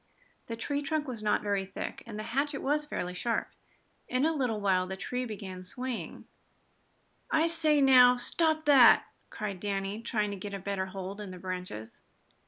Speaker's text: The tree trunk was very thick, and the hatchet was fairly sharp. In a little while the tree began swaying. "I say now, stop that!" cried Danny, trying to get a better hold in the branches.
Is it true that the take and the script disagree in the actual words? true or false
true